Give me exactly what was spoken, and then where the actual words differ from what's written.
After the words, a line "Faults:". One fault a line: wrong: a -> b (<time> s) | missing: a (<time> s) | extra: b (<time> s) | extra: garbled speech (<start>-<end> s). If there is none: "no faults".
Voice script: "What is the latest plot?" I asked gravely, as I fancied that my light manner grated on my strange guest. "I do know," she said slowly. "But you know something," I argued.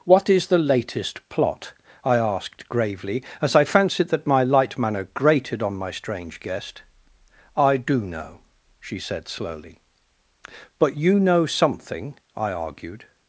"What is the latest plot?" I asked gravely, as I fancied that my light manner grated on my strange guest. "I do know," she said slowly. "But you know something," I argued.
Faults:
no faults